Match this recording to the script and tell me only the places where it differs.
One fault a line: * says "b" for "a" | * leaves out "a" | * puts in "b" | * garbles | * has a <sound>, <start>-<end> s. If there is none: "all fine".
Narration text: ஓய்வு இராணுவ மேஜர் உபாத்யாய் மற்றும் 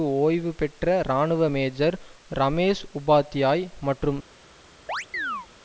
* puts in "பெற்ற"
* puts in "ரமேஷ்"
* has a chirp, 4.9-5.5 s